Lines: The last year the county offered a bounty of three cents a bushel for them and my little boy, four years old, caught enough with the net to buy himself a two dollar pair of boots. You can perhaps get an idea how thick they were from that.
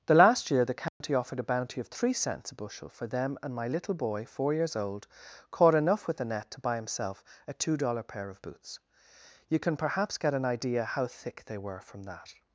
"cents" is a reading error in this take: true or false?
false